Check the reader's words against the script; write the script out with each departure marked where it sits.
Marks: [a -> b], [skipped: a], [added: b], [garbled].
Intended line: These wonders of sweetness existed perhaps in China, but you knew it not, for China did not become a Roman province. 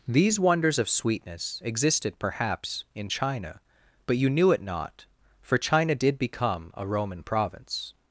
These wonders of sweetness existed perhaps in China, but you knew it not, for China did [skipped: not] become a Roman province.